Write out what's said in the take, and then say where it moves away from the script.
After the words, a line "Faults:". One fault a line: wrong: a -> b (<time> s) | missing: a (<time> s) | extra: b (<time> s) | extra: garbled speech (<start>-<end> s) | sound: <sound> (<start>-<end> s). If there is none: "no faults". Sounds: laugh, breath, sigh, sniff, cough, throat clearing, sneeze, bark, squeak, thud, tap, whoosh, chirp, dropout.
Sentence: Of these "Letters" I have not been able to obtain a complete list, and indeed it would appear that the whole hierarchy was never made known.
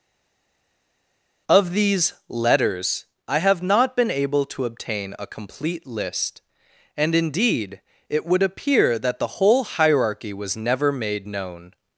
Of these "Letters" I have not been able to obtain a complete list, and indeed it would appear that the whole hierarchy was never made known.
Faults:
no faults